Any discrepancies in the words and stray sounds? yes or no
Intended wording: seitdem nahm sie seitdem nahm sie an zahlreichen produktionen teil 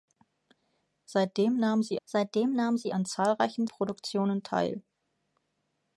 no